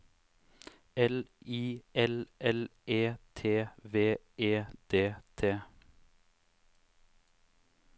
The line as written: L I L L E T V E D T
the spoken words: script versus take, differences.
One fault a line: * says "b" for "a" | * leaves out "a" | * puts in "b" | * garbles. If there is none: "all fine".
all fine